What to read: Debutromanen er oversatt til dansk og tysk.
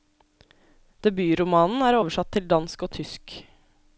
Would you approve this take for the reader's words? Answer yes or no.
yes